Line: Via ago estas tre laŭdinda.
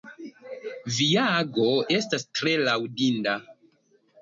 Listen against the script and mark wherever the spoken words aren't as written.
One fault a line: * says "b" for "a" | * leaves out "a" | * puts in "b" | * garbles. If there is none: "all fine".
all fine